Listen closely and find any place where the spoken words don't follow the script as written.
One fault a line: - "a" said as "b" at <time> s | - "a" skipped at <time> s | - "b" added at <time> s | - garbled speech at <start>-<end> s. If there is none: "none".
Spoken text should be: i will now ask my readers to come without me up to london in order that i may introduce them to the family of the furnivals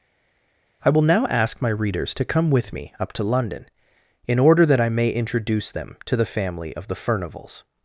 - "without" said as "with" at 2.5 s